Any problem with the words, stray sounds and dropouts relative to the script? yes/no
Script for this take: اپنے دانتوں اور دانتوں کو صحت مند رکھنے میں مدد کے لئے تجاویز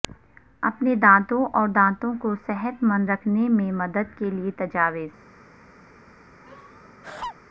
yes